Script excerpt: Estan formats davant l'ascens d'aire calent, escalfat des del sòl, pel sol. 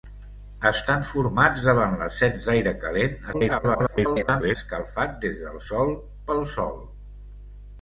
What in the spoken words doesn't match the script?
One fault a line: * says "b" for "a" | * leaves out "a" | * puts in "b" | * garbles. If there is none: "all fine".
* garbles